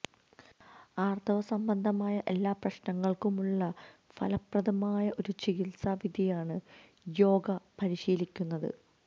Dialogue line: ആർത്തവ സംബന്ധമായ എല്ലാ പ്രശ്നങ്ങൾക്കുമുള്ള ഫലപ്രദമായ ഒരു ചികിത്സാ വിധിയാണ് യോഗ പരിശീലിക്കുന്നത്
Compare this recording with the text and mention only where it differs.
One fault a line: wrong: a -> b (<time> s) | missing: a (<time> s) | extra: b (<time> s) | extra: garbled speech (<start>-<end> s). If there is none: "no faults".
no faults